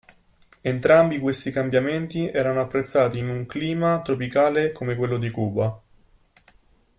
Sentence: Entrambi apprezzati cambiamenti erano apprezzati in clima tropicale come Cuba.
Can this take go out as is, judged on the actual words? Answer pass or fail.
fail